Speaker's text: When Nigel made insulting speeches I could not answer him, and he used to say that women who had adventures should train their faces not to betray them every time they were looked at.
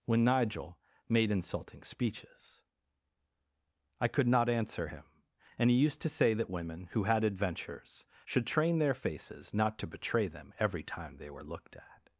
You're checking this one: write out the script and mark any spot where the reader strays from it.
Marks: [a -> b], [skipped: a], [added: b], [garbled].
When Nigel made insulting speeches I could not answer him, and he used to say that women who had adventures should train their faces not to betray them every time they were looked at.